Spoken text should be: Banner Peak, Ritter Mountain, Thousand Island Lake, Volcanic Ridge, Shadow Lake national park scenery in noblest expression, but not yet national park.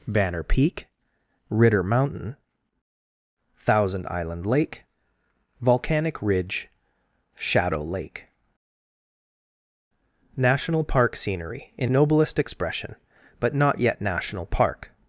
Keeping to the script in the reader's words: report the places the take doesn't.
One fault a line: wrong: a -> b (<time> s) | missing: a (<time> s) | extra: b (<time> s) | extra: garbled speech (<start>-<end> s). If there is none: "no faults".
no faults